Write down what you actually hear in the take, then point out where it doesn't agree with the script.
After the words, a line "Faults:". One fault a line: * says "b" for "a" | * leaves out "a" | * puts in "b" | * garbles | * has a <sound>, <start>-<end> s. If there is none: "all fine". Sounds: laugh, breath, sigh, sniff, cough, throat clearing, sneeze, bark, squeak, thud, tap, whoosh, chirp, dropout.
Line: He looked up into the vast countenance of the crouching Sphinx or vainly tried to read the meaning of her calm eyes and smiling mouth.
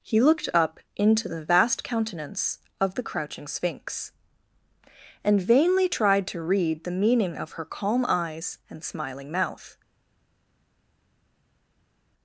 He looked up into the vast countenance of the crouching Sphinx and vainly tried to read the meaning of her calm eyes and smiling mouth.
Faults:
* says "and" for "or"